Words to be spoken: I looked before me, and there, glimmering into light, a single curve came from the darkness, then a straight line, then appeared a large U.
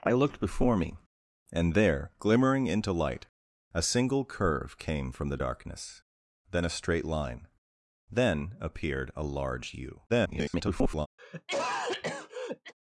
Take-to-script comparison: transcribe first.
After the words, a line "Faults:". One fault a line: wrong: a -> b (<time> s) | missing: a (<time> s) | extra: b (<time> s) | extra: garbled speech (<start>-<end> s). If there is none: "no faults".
I looked before me, and there, glimmering into light, a single curve came from the darkness, then a straight line, then appeared a large U. [garbled]
Faults:
extra: garbled speech (10.1-11.1 s)